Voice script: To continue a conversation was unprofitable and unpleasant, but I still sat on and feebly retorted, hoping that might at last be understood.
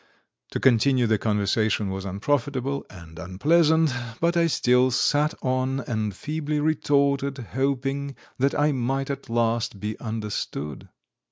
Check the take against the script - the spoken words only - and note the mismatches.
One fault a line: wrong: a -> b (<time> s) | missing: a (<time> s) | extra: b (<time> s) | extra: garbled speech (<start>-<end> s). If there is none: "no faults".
wrong: a -> the (1.1 s)
extra: I (8.6 s)